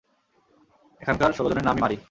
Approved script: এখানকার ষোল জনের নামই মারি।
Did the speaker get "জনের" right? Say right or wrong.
right